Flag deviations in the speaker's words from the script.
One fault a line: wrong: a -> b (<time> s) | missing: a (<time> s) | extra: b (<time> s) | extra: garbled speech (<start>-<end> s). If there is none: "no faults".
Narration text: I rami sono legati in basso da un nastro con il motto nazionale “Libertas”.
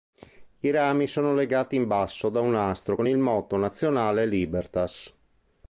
no faults